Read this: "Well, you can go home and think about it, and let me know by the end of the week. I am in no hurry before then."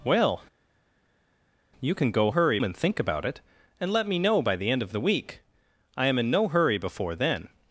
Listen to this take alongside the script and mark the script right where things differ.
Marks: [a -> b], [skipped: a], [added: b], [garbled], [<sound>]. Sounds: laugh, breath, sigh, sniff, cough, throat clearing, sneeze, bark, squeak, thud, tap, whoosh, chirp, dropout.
"Well, you can go [home -> hurry] and think about it, and let me know by the end of the week. I am in no hurry before then."